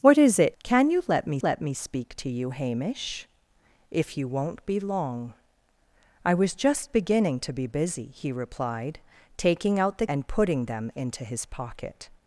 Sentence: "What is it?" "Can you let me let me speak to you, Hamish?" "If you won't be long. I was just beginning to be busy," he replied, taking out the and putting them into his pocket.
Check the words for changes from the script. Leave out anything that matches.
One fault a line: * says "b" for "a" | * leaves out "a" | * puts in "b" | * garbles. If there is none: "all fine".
all fine